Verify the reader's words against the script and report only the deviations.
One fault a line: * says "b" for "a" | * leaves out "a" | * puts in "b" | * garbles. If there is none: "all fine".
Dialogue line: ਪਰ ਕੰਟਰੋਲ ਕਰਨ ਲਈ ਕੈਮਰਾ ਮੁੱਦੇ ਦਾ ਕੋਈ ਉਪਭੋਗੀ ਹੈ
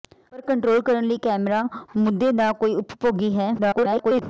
* garbles